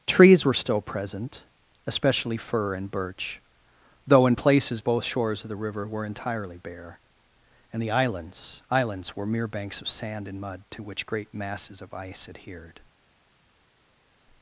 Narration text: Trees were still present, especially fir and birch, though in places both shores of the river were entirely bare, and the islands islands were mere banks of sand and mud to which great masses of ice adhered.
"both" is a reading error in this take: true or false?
false